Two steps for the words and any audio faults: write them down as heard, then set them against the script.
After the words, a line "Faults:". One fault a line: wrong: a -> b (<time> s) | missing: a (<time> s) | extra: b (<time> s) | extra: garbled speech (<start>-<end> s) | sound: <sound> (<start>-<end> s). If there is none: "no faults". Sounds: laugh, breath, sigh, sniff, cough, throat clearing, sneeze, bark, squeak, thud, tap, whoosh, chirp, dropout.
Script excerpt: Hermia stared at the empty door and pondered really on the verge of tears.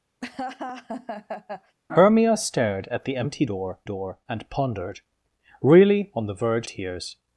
Hermia stared at the empty door door and pondered really on the verge tears.
Faults:
sound: laugh (0.2-1.8 s)
extra: door (3.8 s)
missing: of (6.7 s)